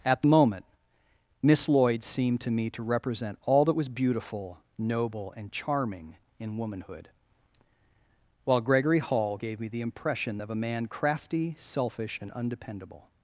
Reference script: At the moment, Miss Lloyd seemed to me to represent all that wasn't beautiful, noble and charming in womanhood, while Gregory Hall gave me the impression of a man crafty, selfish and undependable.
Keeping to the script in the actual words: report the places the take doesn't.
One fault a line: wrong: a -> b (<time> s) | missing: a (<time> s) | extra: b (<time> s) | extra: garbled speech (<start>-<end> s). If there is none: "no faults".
wrong: wasn't -> was (3.7 s)